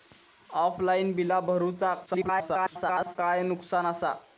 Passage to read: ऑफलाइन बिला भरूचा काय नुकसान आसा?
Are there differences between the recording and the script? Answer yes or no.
yes